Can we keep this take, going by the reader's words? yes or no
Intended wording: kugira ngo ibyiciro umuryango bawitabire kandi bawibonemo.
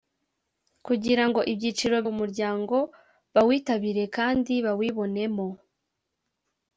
yes